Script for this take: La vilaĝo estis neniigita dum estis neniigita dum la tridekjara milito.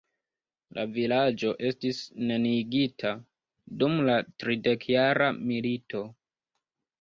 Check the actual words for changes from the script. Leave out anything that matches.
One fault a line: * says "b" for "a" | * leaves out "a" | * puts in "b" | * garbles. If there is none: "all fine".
* leaves out "estis neniigita dum"